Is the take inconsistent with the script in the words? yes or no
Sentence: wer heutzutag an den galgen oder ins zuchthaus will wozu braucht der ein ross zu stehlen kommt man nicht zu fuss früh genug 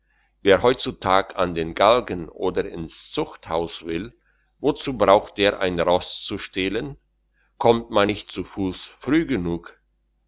no